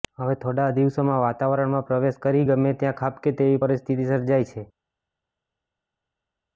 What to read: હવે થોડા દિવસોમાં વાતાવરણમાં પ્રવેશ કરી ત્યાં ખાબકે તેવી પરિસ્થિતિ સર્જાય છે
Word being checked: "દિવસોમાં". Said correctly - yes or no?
yes